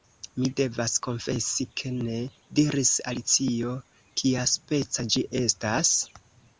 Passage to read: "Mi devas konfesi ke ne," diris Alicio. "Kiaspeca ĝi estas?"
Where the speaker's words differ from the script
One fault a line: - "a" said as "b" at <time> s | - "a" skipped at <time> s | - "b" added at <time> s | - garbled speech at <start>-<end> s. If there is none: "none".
none